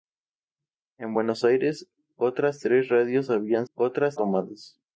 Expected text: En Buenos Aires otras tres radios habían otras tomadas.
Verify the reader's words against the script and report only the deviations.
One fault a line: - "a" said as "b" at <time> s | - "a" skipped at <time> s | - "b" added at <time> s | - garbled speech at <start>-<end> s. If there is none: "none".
none